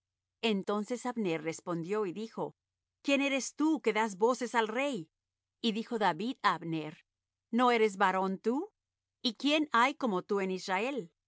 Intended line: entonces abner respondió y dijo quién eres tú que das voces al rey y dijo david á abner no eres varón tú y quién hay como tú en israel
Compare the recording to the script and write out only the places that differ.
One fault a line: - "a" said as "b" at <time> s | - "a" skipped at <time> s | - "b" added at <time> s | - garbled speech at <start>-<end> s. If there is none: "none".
none